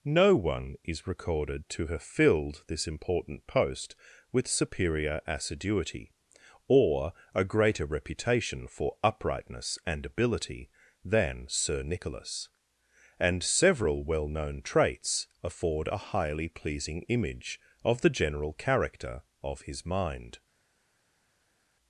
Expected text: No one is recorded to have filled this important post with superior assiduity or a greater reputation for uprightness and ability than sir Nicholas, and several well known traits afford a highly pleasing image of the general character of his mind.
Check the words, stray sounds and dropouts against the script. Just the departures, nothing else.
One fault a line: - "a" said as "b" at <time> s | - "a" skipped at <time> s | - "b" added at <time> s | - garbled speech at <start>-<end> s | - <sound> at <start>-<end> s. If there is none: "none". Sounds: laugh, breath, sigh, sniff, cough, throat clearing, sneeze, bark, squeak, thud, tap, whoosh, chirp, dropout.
none